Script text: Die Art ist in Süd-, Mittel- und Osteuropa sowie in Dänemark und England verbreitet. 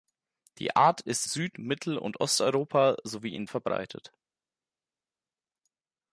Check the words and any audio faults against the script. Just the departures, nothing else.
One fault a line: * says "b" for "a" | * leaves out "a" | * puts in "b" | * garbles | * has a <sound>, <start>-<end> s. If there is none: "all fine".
* leaves out "in"
* leaves out "Dänemark und England"